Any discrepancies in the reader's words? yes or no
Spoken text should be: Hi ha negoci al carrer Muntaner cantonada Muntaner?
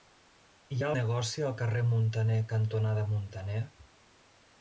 no